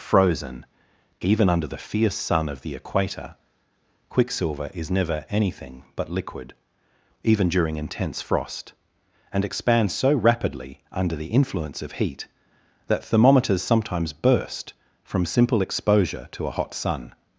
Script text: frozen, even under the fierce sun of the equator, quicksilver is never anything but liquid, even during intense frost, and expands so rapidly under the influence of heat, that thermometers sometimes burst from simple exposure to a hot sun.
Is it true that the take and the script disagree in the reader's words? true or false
false